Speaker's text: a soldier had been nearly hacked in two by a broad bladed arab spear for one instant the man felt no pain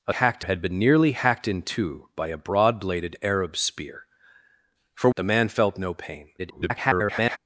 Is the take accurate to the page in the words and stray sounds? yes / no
no